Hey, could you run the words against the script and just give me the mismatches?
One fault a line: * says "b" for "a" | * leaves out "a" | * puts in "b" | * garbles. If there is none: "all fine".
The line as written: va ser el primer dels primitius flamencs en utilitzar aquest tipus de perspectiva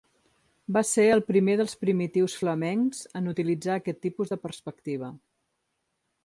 all fine